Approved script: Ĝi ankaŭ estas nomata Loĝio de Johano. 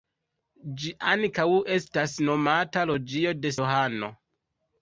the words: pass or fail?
pass